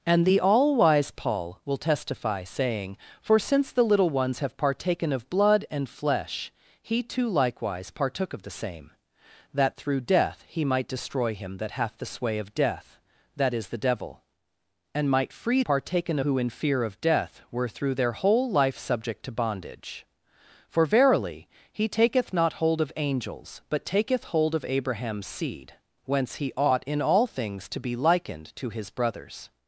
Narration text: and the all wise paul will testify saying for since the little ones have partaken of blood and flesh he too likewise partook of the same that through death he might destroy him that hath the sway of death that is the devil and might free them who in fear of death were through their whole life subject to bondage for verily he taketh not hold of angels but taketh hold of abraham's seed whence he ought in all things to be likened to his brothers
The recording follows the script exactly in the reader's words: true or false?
false